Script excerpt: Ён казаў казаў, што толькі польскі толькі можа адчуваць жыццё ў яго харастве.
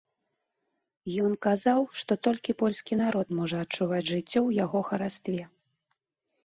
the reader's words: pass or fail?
fail